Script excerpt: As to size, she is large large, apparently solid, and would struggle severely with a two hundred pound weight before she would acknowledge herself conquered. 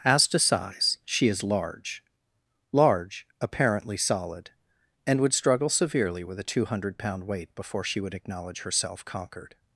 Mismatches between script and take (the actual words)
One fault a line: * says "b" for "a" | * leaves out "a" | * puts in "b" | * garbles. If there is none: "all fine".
all fine